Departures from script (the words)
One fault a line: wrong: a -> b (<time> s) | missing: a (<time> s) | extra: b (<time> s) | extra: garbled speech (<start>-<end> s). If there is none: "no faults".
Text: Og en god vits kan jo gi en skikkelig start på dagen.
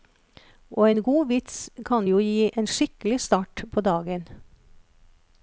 no faults